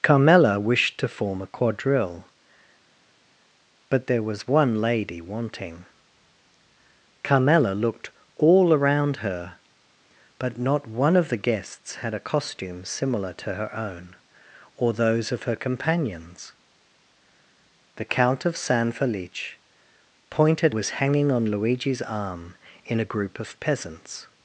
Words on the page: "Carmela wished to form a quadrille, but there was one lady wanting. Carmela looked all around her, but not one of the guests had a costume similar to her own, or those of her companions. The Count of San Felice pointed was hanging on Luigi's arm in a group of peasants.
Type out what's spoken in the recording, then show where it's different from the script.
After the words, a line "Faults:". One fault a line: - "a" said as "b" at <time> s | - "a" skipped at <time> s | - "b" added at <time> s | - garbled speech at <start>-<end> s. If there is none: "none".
"Carmela wished to form a quadrille, but there was one lady wanting. Carmela looked all around her, but not one of the guests had a costume similar to her own, or those of her companions. The Count of San Felice pointed was hanging on Luigi's arm in a group of peasants.
Faults:
none